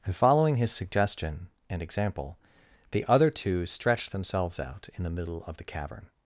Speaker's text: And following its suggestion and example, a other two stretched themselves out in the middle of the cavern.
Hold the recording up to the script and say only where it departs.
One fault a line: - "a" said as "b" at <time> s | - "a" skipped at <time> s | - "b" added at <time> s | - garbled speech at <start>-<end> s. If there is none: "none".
- "its" said as "his" at 0.6 s
- "a" said as "the" at 2.9 s